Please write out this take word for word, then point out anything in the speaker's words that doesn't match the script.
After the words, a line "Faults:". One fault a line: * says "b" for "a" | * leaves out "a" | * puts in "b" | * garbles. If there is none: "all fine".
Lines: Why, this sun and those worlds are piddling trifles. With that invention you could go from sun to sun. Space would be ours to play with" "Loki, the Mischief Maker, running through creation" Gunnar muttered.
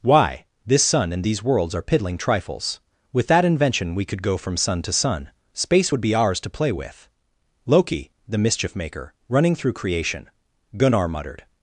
Why, this sun and these worlds are piddling trifles. With that invention we could go from sun to sun. Space would be ours to play with" "Loki, the Mischief Maker, running through creation" Gunnar muttered.
Faults:
* says "these" for "those"
* says "we" for "you"